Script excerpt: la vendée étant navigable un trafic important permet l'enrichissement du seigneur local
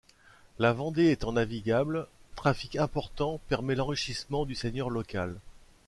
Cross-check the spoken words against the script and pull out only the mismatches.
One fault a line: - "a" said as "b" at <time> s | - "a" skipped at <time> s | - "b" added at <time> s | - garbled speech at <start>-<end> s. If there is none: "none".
- "un" skipped at 2.1 s